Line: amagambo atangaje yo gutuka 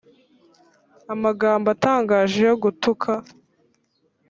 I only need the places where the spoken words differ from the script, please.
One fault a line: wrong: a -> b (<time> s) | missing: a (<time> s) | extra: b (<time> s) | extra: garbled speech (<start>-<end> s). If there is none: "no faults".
no faults